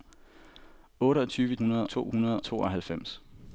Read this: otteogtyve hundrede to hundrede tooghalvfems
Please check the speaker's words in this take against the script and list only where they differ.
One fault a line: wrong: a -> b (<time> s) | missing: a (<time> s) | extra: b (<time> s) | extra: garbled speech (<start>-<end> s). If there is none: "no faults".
no faults